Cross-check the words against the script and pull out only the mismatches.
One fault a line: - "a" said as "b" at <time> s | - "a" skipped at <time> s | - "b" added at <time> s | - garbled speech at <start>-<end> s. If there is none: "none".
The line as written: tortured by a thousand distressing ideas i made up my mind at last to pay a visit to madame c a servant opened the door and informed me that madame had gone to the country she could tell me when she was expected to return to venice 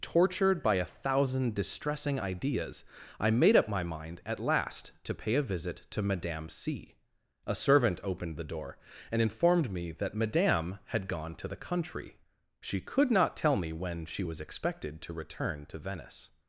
- "not" added at 13.1 s